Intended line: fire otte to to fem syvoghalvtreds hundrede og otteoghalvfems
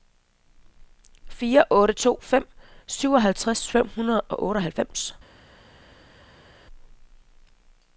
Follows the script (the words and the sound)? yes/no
no